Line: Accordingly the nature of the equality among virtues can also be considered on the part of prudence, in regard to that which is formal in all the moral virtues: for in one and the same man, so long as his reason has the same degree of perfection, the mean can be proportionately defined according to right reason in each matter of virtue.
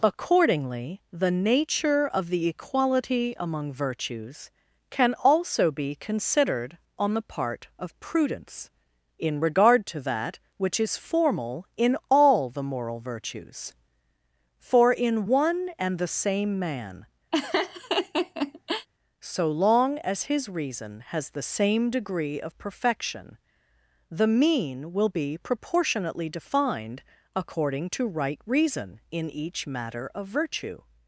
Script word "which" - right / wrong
right